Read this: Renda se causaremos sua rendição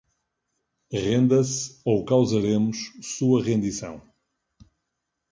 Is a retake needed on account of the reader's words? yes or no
yes